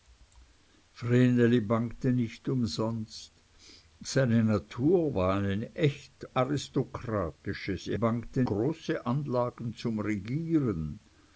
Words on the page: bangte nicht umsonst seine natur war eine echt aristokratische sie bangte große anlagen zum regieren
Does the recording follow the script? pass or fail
pass